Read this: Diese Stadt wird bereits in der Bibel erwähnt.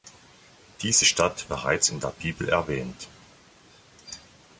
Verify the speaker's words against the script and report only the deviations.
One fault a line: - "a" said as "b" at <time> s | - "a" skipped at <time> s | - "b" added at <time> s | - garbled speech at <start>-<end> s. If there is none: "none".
- "wird" skipped at 1.5 s